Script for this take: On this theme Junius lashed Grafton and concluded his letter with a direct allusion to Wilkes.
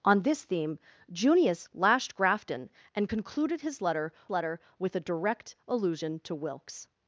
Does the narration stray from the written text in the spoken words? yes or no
yes